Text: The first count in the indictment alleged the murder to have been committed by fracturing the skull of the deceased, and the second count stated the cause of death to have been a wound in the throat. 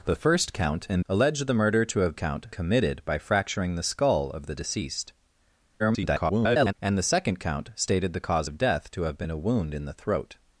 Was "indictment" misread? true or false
true